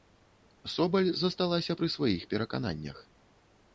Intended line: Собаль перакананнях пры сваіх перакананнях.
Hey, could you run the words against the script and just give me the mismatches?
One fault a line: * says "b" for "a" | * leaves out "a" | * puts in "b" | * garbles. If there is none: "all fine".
* says "засталася" for "перакананнях"